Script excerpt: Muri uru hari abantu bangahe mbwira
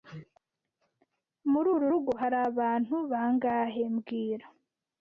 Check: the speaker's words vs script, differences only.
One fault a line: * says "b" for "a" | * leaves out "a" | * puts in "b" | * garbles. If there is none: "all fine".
* puts in "rugo"